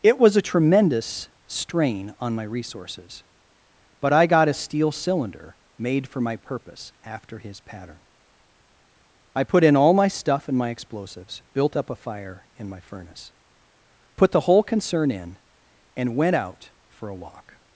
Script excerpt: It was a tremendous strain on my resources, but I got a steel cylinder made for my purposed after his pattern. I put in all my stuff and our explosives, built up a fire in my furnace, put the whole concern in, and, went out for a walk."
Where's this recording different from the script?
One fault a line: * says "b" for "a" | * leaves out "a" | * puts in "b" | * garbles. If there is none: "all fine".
* says "purpose" for "purposed"
* says "my" for "our"